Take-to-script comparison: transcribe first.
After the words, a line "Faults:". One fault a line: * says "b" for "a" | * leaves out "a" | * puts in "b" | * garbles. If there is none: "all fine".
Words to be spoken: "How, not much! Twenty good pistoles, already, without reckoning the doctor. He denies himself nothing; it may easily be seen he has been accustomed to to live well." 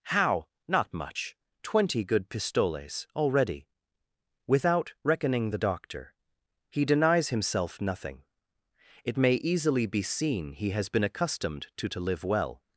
"How, not much! Twenty good pistoles, already, without reckoning the doctor. He denies himself nothing; it may easily be seen he has been accustomed to to live well."
Faults:
all fine